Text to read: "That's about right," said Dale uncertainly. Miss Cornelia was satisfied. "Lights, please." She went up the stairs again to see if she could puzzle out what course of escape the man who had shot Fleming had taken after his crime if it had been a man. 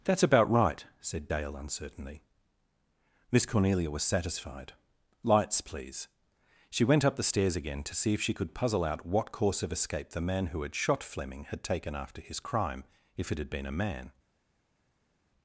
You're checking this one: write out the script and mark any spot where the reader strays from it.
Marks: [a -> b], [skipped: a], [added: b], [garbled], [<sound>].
"That's about right," said Dale uncertainly. Miss Cornelia was satisfied. "Lights, please." She went up the stairs again to see if she could puzzle out what course of escape the man who had shot Fleming had taken after his crime if it had been a man.